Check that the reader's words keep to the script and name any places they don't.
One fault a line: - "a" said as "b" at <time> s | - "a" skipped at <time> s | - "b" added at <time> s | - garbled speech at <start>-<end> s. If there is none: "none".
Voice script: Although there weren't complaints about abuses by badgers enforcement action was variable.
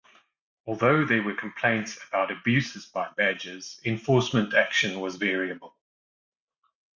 - "weren't" said as "were" at 1.2 s